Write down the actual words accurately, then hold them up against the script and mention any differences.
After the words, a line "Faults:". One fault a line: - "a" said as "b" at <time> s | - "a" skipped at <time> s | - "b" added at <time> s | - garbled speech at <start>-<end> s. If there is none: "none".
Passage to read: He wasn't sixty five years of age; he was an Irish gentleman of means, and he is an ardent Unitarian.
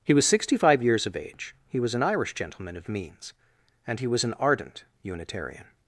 He was sixty five years of age; he was an Irish gentleman of means, and he was an ardent Unitarian.
Faults:
- "wasn't" said as "was" at 0.1 s
- "is" said as "was" at 4.1 s